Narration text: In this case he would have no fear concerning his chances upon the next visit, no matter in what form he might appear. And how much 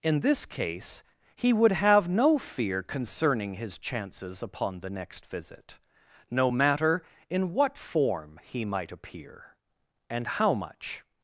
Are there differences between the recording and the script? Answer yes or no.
no